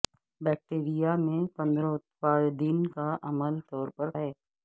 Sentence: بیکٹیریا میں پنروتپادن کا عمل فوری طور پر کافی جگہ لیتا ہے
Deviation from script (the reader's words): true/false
true